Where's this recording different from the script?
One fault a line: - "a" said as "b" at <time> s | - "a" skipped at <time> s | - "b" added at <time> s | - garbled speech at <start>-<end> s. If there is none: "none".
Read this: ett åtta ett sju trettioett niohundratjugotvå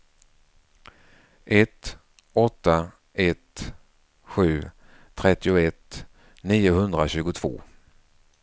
none